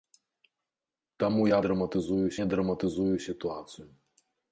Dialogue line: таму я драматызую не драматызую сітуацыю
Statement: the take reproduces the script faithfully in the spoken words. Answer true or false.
true